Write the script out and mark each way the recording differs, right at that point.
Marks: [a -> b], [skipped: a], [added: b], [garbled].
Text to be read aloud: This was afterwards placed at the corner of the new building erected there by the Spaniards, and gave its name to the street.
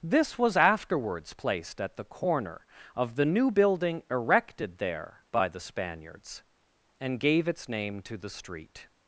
This was afterwards placed at the corner of the new building erected there by the Spaniards, and gave its name to the street.